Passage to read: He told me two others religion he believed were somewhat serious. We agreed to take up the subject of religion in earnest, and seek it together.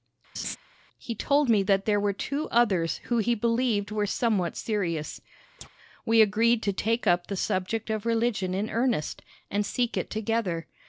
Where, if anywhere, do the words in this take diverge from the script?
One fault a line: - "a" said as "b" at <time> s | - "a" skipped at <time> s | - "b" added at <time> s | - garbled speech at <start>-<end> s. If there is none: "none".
- "that there were" added at 1.6 s
- "religion" said as "who" at 3.0 s